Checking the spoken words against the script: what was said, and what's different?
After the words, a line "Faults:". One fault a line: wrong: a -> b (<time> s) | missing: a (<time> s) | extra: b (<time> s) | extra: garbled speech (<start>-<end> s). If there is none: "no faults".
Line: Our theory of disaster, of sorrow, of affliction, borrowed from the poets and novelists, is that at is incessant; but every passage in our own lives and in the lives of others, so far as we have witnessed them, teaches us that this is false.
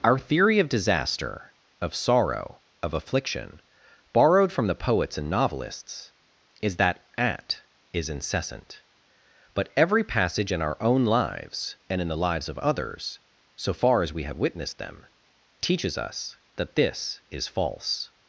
Our theory of disaster, of sorrow, of affliction, borrowed from the poets and novelists, is that at is incessant; but every passage in our own lives and in the lives of others, so far as we have witnessed them, teaches us that this is false.
Faults:
no faults